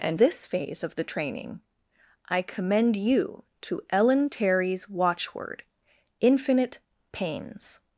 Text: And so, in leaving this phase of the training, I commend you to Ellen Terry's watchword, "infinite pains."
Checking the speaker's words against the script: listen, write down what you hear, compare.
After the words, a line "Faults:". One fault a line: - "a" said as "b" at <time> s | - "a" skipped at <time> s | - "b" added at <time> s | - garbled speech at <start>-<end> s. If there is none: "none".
And this phase of the training, I commend you to Ellen Terry's watchword, "infinite pains."
Faults:
- "so in leaving" skipped at 0.2 s